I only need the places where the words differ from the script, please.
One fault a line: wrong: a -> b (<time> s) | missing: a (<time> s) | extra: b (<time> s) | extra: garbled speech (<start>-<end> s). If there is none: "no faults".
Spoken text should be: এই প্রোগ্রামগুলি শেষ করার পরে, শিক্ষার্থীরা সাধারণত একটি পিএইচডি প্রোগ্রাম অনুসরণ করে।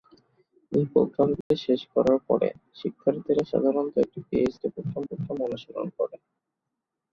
extra: প্রোগ্রাম (5.1 s)